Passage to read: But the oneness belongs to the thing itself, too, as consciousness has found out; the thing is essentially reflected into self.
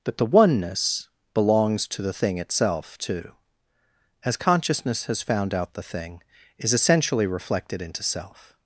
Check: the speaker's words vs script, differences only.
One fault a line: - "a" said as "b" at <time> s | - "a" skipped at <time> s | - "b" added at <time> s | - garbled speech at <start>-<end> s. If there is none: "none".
none